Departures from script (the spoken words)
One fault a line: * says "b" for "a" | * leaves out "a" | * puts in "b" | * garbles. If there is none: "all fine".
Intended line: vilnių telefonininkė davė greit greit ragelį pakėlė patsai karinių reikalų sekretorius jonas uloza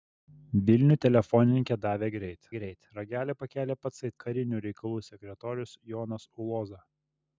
all fine